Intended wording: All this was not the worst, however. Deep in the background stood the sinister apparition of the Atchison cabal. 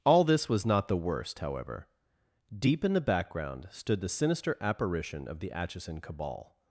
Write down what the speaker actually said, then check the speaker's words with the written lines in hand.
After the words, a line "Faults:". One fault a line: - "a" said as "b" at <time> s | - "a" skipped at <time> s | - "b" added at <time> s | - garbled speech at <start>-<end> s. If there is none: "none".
All this was not the worst, however. Deep in the background stood the sinister apparition of the Atchison cabal.
Faults:
none